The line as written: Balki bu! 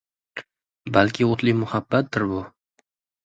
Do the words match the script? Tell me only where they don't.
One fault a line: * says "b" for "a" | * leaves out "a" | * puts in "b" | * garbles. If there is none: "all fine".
* puts in "o‘tli muhabbatdir"